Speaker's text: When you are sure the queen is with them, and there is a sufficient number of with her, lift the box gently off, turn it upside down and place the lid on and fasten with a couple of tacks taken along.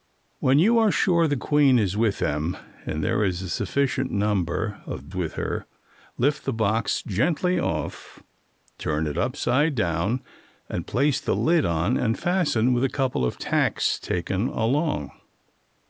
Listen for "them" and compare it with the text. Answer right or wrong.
right